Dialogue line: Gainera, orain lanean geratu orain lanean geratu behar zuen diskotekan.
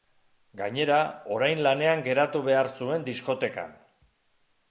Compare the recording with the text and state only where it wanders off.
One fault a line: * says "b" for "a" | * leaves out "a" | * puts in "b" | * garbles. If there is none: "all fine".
* leaves out "orain lanean geratu"